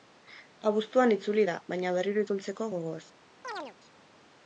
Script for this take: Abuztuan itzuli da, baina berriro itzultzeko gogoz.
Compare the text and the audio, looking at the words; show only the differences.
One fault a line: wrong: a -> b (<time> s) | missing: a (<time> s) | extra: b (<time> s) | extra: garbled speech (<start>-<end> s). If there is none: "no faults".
no faults